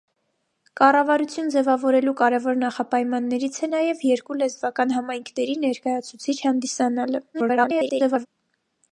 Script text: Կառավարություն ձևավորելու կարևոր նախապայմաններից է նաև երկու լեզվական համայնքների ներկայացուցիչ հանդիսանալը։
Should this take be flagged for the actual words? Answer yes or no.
yes